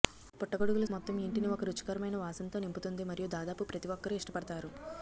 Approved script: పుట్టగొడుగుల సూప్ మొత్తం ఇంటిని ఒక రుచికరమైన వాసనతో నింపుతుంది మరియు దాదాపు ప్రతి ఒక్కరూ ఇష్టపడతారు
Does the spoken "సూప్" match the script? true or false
false